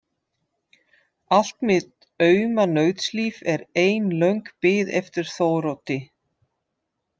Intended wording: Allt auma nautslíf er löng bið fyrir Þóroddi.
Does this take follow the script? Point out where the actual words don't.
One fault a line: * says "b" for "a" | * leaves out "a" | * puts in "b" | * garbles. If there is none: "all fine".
* puts in "mitt"
* puts in "ein"
* says "eftir" for "fyrir"